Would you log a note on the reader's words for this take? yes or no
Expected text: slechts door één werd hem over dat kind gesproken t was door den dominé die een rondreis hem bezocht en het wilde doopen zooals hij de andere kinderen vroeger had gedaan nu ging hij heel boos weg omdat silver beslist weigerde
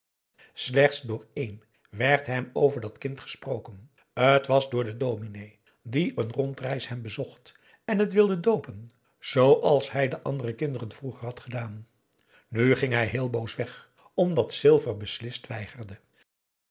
no